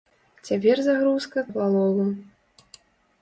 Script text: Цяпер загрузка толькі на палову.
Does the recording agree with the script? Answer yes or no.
no